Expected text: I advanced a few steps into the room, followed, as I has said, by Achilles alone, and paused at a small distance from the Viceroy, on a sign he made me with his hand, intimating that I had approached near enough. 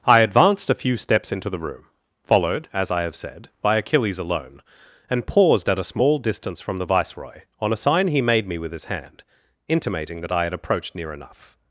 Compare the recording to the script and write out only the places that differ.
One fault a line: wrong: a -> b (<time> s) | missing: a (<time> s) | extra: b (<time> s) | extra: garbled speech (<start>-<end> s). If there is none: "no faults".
wrong: has -> have (3.0 s)